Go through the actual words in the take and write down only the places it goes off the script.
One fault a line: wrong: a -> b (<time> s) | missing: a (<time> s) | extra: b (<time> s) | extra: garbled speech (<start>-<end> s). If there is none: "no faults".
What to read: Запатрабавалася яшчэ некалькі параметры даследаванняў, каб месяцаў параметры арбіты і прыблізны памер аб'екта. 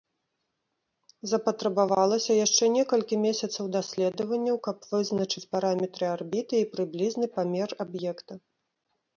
wrong: параметры -> месяцаў (3.2 s)
wrong: месяцаў -> вызначыць (5.0 s)